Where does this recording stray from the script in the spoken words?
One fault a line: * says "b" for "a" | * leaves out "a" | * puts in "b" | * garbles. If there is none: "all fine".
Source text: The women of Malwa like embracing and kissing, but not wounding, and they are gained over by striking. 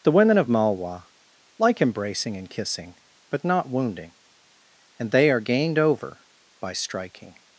all fine